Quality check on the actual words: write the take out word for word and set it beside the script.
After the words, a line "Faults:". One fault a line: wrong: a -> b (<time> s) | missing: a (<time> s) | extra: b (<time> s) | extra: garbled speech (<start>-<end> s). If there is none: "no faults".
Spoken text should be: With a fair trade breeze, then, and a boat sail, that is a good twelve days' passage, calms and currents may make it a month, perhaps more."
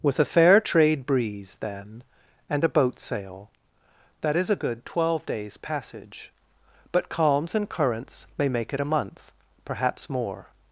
With a fair trade breeze, then, and a boat sail, that is a good twelve days' passage, but calms and currents may make it a month, perhaps more."
Faults:
extra: but (6.9 s)